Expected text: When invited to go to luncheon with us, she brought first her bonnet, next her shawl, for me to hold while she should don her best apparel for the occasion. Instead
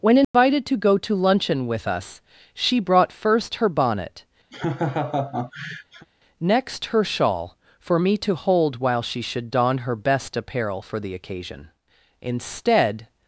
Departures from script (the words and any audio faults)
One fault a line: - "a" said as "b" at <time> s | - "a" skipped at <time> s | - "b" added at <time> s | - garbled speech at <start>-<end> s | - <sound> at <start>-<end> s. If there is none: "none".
- dropout at 0.2-0.3 s
- laugh at 4.5-6.1 s